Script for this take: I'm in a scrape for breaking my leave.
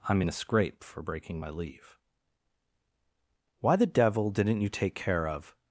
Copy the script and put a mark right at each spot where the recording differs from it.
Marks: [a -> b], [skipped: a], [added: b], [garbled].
I'm in a scrape for breaking my leave. [added: Why the devil didn't you take care of]